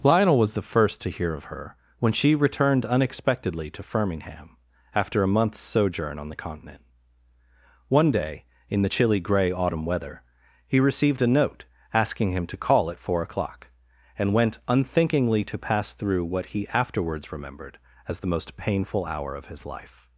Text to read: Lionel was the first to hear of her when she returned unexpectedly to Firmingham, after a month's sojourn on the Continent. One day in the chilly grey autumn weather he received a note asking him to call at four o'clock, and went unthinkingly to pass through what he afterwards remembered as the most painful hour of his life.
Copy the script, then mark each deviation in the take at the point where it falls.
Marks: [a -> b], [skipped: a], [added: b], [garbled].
Lionel was the first to hear of her when she returned unexpectedly to Firmingham, after a month's sojourn on the Continent. One day in the chilly grey autumn weather he received a note asking him to call at four o'clock, and went unthinkingly to pass through what he afterwards remembered as the most painful hour of his life.